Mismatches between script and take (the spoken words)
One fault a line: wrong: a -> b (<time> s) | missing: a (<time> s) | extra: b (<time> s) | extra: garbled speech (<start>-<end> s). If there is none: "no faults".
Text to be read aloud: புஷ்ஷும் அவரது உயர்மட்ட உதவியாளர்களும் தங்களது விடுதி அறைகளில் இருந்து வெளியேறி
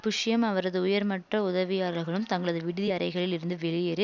no faults